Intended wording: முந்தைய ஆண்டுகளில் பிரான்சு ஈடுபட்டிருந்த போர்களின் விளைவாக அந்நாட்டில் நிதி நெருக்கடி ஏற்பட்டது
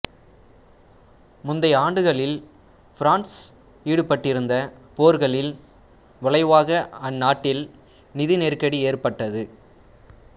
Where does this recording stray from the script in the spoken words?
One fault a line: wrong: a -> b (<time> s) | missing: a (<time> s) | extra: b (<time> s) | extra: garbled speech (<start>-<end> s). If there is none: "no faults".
no faults